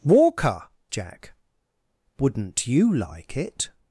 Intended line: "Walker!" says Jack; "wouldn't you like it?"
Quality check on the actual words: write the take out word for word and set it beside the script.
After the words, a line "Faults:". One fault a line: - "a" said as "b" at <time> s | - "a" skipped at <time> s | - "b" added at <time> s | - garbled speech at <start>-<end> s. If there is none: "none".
"Walker!" Jack; "wouldn't you like it?"
Faults:
- "says" skipped at 0.7 s